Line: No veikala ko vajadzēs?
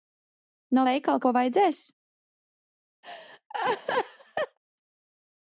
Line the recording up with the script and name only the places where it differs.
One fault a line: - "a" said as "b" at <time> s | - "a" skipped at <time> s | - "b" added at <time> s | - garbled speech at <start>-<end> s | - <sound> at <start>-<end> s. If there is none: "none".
- laugh at 3.0-4.6 s